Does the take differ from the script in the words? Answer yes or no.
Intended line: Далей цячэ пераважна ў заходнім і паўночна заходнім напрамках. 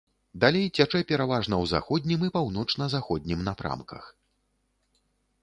no